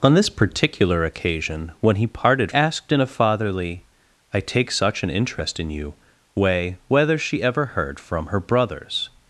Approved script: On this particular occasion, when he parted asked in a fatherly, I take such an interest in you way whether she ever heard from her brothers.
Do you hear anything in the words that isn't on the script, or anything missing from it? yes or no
no